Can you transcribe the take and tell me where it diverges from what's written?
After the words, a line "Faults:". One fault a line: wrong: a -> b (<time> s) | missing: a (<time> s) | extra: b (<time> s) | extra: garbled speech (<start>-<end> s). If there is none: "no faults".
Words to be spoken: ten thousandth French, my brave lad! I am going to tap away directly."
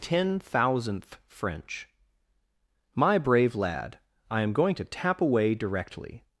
ten thousandth French, my brave lad! I am going to tap away directly."
Faults:
no faults